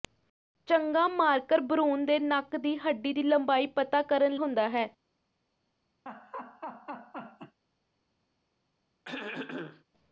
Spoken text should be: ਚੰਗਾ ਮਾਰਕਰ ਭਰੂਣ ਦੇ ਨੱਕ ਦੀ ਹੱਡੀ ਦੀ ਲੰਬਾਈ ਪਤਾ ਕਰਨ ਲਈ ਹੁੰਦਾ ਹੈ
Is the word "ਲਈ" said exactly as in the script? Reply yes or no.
no